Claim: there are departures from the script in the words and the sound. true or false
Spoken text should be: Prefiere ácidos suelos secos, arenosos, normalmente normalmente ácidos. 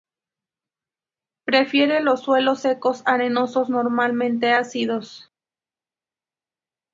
true